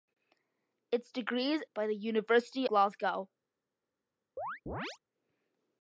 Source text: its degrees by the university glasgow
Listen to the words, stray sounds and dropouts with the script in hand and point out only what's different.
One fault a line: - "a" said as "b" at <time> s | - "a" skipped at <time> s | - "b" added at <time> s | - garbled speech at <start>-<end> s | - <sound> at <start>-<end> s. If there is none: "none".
- chirp at 4.4-5.0 s